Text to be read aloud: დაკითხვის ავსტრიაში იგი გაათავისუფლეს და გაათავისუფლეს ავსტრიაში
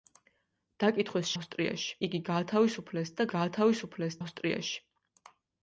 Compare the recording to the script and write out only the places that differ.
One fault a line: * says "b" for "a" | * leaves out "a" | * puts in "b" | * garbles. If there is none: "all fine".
all fine